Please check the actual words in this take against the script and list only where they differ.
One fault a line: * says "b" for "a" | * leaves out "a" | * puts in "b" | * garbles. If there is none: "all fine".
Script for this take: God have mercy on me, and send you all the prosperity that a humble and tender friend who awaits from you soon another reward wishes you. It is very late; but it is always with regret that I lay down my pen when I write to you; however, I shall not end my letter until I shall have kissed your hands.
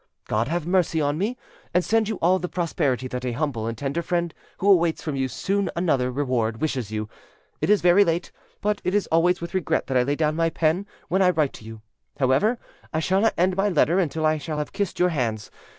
all fine